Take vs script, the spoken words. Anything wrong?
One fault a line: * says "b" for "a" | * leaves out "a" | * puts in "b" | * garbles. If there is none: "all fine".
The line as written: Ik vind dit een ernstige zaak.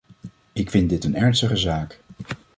all fine